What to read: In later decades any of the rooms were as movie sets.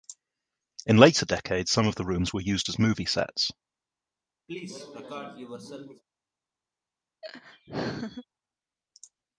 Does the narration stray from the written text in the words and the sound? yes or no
yes